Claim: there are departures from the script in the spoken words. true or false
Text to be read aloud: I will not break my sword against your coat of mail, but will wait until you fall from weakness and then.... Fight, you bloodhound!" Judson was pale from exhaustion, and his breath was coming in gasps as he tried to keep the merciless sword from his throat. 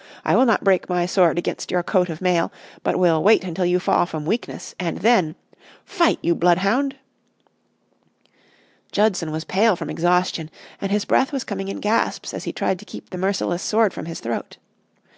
false